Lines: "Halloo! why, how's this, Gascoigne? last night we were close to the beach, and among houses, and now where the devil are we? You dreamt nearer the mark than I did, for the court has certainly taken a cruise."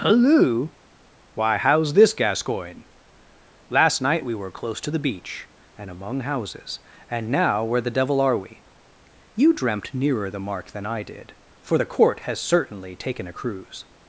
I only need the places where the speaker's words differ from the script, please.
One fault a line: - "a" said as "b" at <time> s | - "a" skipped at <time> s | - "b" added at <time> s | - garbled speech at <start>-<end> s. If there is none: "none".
none